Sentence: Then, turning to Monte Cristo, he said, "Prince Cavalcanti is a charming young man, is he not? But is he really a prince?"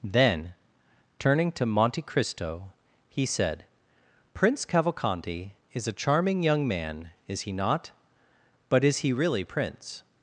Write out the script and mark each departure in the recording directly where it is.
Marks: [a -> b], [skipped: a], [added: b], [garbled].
Then, turning to Monte Cristo, he said, "Prince Cavalcanti is a charming young man, is he not? But is he really [skipped: a] prince?"